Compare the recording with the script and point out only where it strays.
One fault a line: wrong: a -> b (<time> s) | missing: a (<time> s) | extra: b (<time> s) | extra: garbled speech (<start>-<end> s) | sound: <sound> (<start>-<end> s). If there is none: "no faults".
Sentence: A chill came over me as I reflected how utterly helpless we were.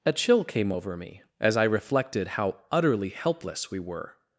no faults